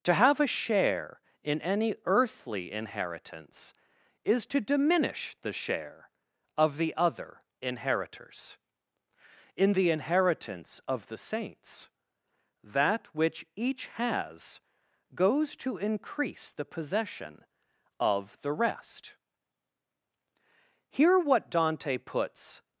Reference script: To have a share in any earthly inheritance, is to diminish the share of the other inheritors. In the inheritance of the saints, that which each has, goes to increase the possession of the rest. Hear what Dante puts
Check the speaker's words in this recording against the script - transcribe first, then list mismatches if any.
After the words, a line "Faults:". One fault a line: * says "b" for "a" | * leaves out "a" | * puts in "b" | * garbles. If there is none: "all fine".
To have a share in any earthly inheritance, is to diminish the share of the other inheritors. In the inheritance of the saints, that which each has, goes to increase the possession of the rest. Hear what Dante puts
Faults:
all fine